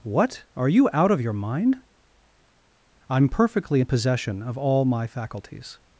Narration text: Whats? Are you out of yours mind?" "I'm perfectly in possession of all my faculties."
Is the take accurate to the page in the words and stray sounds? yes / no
no